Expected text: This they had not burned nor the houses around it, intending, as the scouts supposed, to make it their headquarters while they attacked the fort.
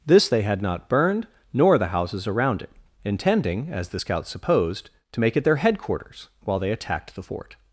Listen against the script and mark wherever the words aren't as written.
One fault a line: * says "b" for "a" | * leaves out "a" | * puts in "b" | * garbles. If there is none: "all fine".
all fine